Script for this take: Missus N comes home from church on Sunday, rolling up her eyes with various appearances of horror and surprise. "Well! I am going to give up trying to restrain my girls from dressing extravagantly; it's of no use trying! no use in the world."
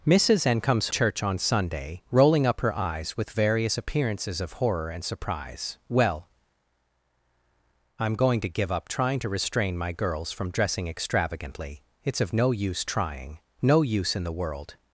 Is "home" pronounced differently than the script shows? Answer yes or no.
yes